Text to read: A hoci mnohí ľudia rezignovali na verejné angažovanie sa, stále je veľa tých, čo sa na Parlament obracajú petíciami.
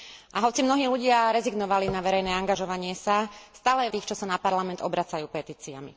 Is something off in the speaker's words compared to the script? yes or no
yes